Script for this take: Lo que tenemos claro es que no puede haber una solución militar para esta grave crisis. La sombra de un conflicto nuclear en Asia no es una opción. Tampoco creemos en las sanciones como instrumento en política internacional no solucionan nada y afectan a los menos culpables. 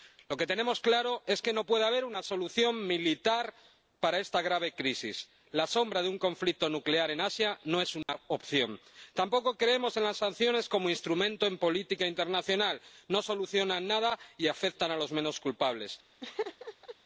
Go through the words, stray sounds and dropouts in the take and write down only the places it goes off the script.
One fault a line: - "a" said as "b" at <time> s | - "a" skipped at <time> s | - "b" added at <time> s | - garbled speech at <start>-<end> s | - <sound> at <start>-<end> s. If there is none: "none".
- dropout at 8.0-8.1 s
- laugh at 16.2-17.0 s